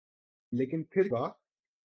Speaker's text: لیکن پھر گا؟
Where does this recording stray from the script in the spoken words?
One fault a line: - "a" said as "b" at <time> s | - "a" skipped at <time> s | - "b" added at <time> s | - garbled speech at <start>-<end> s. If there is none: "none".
none